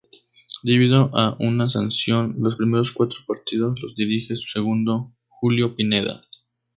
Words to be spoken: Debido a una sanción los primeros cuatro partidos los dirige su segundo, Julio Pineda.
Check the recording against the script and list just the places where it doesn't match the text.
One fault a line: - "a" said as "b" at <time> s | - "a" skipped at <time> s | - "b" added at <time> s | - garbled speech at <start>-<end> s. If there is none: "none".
none